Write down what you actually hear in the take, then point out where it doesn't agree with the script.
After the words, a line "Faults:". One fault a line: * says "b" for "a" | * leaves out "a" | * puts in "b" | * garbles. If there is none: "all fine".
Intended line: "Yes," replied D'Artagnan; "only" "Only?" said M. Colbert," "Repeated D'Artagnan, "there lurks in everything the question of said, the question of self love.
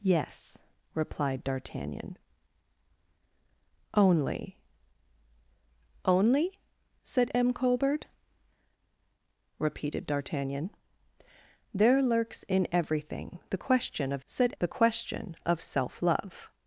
"Yes," replied D'Artagnan; "only" "Only?" said M. Colbert," "Repeated D'Artagnan, "there lurks in everything the question of said, the question of self love.
Faults:
all fine